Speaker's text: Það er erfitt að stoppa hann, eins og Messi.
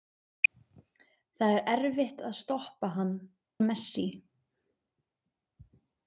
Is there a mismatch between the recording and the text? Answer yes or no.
yes